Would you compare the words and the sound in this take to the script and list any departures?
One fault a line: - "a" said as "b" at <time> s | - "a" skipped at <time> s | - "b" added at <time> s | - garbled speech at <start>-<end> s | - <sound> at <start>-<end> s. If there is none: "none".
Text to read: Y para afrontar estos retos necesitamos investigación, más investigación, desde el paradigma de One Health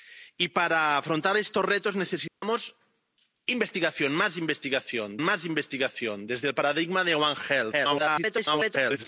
- dropout at 2.3-2.4 s
- "más investigación" added at 5.2 s
- garbled speech at 7.7-9.1 s